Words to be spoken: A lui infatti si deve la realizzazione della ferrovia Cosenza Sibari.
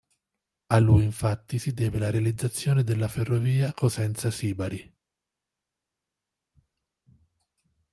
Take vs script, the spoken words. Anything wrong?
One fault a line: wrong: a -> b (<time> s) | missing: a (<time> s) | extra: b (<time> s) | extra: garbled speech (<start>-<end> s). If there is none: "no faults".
no faults